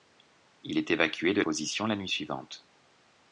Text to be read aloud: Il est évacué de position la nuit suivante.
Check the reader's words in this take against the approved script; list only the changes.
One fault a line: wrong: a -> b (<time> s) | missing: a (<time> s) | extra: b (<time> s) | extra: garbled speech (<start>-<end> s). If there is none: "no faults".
no faults